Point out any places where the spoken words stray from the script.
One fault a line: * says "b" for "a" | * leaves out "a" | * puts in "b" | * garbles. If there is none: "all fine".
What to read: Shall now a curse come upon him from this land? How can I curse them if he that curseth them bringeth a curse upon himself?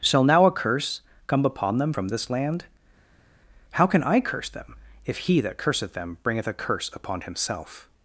* says "them" for "him"